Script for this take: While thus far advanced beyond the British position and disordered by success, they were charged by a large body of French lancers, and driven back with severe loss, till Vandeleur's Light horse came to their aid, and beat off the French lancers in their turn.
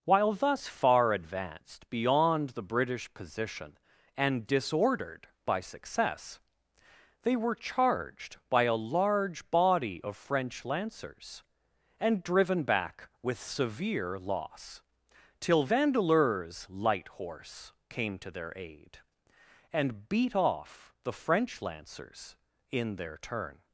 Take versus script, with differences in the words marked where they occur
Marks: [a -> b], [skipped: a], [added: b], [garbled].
While thus far advanced beyond the British position and disordered by success, they were charged by a large body of French lancers, and driven back with severe loss, till Vandeleur's Light horse came to their aid, and beat off the French lancers in their turn.